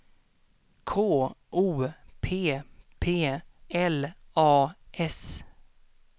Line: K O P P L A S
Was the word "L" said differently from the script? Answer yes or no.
no